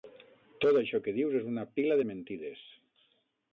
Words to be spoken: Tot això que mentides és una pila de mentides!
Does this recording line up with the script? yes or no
no